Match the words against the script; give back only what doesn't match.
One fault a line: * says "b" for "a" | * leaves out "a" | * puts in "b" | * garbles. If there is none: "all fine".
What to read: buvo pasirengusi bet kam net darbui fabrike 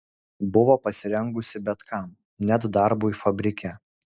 all fine